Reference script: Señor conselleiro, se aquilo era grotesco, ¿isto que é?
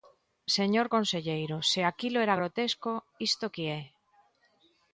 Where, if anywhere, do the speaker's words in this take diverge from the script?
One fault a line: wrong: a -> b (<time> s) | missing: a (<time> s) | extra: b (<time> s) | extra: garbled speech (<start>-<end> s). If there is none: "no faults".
no faults